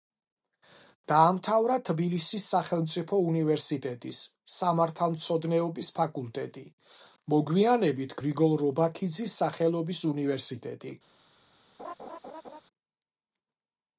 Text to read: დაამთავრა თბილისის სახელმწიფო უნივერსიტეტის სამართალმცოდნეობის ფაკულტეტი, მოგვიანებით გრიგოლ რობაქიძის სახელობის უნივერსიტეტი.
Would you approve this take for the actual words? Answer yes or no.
yes